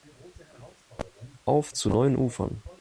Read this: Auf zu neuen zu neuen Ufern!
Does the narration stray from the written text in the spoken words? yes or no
yes